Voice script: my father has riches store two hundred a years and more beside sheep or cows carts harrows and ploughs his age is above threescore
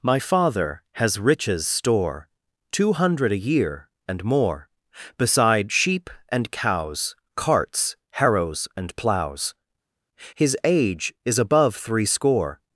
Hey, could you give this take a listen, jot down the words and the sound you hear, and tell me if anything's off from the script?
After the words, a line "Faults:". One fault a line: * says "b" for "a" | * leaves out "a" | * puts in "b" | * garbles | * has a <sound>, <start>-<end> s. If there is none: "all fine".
my father has riches store two hundred a year and more beside sheep and cows carts harrows and ploughs his age is above threescore
Faults:
* says "year" for "years"
* says "and" for "or"